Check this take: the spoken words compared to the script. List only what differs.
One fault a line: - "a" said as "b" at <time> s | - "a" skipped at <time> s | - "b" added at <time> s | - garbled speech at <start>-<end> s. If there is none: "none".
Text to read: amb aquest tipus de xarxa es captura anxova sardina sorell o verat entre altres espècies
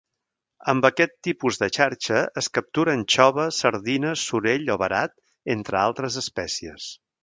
none